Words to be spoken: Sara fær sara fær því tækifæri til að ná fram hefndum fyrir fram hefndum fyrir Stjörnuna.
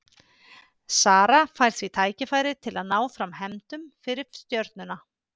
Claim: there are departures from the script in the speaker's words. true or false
true